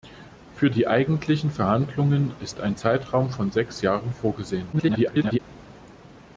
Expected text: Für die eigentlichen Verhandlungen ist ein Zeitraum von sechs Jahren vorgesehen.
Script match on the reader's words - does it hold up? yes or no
no